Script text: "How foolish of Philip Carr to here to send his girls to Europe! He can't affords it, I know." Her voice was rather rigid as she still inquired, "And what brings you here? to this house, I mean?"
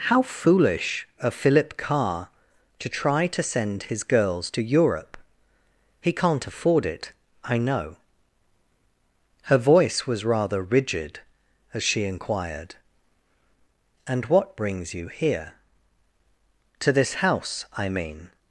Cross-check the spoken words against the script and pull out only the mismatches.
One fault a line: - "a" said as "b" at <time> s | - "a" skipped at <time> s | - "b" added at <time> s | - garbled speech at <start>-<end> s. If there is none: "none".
- "here" said as "try" at 2.9 s
- "affords" said as "afford" at 6.5 s
- "still" skipped at 12.0 s